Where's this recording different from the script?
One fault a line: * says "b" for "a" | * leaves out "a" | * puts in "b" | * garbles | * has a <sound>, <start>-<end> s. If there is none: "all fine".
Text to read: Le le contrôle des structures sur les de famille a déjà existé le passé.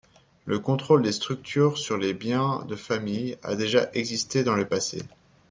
* leaves out "le"
* puts in "biens"
* puts in "dans"